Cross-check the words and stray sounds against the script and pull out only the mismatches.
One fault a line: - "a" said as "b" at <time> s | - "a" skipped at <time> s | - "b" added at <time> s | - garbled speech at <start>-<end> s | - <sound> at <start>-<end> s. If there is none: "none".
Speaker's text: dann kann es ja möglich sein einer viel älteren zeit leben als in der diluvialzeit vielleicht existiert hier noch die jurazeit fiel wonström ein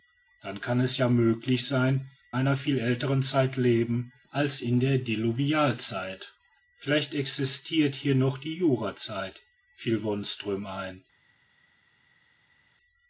none